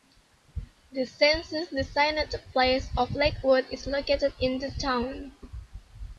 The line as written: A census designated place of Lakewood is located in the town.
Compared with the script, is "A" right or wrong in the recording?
wrong